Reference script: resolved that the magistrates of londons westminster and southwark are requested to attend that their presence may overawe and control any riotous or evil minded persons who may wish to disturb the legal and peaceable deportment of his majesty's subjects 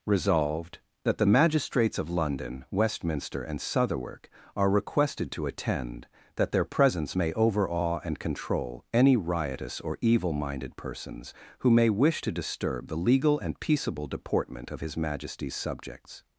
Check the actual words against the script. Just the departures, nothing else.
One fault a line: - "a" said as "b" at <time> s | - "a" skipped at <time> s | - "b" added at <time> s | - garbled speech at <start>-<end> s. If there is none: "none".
- "londons" said as "london" at 2.1 s